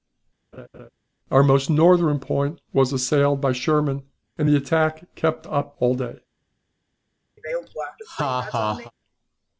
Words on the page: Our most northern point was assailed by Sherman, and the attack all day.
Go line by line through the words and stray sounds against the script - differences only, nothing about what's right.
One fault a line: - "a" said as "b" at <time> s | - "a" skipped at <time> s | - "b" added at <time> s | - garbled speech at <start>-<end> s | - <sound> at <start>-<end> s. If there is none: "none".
- laugh at 0.5-0.9 s
- "kept up" added at 5.2 s
- laugh at 7.4-8.9 s